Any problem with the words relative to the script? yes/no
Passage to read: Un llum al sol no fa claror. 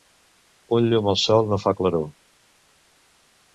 no